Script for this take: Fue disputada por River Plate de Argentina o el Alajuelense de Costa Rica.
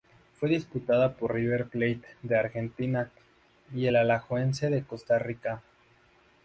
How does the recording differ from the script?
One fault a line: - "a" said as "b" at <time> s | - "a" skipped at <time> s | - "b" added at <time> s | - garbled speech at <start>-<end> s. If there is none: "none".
- "o" said as "y" at 3.7 s